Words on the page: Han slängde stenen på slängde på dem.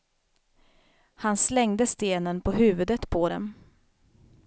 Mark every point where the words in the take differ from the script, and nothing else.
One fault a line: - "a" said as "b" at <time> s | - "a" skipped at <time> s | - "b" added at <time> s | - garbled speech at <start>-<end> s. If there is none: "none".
- "slängde" said as "huvudet" at 2.5 s